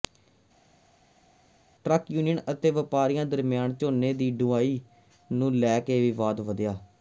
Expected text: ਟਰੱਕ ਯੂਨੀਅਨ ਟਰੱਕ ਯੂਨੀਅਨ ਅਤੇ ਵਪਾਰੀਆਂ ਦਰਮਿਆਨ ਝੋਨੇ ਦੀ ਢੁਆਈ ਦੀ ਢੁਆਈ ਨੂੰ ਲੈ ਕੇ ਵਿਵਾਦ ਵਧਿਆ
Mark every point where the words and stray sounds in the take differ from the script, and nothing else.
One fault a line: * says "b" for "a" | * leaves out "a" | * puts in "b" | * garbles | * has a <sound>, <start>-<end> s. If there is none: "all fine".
* leaves out "ਟਰੱਕ ਯੂਨੀਅਨ"
* leaves out "ਦੀ ਢੁਆਈ"